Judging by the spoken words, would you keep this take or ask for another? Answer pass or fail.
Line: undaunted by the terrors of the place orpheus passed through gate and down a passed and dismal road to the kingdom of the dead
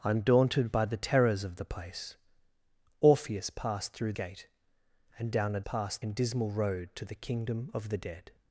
pass